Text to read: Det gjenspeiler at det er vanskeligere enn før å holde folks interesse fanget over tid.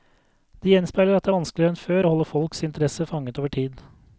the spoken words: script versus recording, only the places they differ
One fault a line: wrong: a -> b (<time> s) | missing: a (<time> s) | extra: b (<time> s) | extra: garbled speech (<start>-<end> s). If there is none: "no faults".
no faults